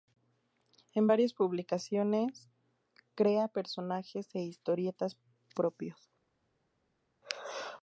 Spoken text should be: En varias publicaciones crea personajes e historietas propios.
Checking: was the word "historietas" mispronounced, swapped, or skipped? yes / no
no